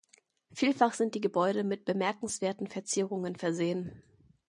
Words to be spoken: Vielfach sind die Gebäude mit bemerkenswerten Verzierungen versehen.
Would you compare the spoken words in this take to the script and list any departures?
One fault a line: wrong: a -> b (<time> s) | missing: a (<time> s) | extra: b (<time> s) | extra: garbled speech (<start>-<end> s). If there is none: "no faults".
no faults